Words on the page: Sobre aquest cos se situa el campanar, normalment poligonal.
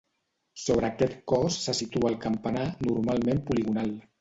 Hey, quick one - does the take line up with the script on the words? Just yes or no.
yes